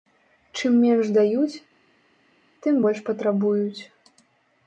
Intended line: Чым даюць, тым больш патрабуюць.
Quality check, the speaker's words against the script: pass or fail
fail